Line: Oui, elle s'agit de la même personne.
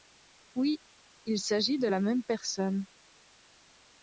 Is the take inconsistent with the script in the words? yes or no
yes